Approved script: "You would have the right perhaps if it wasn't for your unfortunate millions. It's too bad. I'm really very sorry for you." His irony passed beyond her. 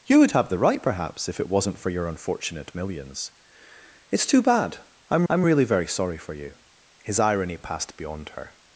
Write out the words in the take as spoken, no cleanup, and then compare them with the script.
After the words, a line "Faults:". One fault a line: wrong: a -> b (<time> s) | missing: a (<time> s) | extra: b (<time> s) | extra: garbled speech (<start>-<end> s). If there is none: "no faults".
"You would have the right perhaps if it wasn't for your unfortunate millions. It's too bad. I'm I'm really very sorry for you." His irony passed beyond her.
Faults:
extra: I'm (5.3 s)